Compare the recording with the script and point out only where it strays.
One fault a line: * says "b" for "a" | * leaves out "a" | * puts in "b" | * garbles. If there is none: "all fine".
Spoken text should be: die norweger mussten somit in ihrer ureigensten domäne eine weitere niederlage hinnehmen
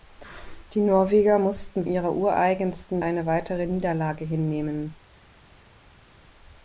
* leaves out "somit in"
* leaves out "domäne"